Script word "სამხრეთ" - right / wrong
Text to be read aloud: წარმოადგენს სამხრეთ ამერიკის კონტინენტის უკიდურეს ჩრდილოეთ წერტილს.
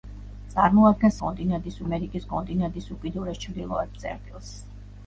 wrong